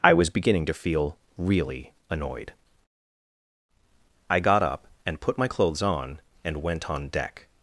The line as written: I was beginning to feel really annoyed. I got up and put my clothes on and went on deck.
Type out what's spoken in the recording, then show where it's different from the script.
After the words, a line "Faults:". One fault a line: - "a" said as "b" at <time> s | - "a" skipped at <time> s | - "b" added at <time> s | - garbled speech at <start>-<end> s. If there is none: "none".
I was beginning to feel really annoyed. I got up and put my clothes on and went on deck.
Faults:
none